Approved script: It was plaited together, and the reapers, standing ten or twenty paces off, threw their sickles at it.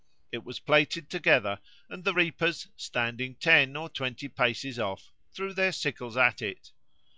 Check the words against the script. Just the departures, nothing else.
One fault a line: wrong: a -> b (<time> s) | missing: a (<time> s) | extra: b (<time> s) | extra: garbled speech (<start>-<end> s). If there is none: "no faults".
no faults